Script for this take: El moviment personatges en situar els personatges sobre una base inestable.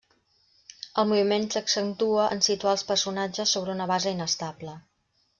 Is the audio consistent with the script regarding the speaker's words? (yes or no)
no